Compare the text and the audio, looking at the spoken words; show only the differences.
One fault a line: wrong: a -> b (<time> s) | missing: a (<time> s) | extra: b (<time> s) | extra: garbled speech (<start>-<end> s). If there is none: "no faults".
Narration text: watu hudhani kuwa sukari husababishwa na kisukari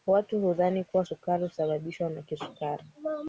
no faults